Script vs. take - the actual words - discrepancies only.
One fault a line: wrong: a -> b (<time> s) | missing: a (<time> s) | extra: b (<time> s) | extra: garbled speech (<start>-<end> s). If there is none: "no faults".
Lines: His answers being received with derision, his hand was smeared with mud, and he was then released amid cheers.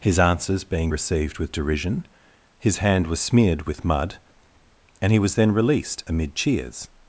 no faults